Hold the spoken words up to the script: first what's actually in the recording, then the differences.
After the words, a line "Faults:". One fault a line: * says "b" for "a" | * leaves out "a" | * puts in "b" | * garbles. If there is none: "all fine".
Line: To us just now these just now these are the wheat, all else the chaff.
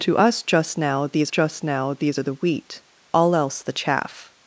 To us just now these just now these are the wheat, all else the chaff.
Faults:
all fine